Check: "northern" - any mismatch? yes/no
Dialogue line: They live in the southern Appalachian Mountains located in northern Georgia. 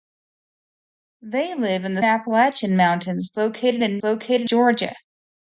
yes